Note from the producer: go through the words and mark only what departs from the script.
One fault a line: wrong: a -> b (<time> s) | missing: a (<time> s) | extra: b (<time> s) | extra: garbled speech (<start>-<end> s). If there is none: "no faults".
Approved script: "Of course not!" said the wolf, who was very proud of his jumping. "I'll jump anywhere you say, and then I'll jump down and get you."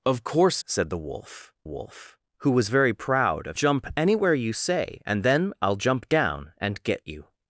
missing: not (0.6 s)
extra: wolf (1.6 s)
missing: his jumping I'll (3.6 s)